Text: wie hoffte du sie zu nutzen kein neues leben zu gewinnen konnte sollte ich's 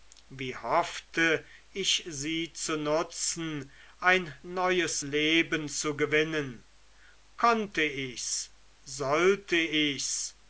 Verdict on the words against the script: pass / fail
fail